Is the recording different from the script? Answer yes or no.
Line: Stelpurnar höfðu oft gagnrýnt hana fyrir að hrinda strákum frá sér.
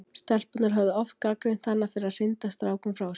no